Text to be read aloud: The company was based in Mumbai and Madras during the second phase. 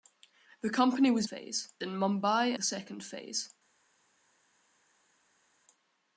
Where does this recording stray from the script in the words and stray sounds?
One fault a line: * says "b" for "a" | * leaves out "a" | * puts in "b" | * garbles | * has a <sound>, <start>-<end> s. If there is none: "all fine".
* says "phase" for "based"
* leaves out "and Madras during"